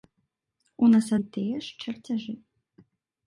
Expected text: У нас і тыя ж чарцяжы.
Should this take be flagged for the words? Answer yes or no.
no